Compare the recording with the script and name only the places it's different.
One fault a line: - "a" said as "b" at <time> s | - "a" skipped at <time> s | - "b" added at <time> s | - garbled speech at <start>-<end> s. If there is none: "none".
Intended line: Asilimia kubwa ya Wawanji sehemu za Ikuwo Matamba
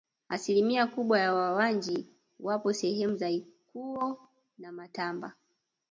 - "wapo" added at 2.4 s
- "na" added at 4.6 s